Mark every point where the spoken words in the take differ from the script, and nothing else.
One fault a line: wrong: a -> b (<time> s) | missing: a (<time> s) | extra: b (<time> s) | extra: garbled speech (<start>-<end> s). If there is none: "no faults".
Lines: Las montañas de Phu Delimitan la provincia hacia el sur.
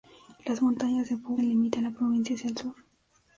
no faults